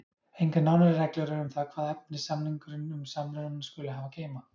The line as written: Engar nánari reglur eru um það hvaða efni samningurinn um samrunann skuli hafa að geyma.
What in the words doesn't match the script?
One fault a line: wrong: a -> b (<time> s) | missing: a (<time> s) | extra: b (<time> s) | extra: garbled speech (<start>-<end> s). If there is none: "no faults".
no faults